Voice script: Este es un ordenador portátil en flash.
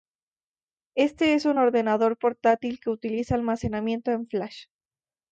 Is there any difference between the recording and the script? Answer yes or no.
yes